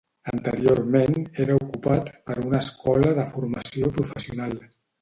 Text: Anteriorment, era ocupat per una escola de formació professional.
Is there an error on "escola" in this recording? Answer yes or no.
no